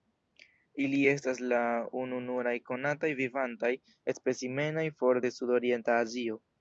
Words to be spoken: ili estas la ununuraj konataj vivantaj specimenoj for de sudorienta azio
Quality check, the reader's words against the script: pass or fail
pass